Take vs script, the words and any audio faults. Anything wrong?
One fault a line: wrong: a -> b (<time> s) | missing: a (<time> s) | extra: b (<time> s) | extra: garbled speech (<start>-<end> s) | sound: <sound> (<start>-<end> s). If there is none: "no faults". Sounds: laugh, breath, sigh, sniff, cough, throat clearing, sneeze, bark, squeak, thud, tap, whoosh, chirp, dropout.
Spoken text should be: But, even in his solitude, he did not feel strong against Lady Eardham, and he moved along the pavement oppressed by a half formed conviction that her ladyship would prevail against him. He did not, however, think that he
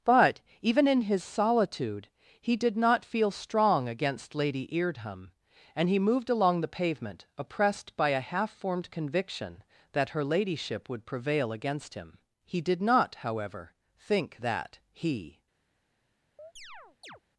sound: chirp (16.4-17.2 s)